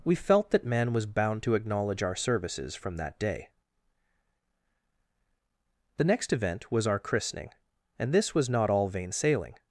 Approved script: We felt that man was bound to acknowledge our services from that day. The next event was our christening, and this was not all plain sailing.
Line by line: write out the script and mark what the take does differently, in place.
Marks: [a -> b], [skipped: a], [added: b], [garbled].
We felt that man was bound to acknowledge our services from that day. The next event was our christening, and this was not all [plain -> vain] sailing.